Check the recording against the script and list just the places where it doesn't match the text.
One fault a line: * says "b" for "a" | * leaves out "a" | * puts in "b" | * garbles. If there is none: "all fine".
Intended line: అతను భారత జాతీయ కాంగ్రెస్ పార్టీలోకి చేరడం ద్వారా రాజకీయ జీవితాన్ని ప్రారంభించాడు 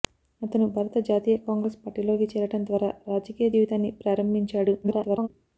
* garbles